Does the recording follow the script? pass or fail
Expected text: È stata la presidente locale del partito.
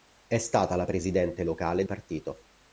fail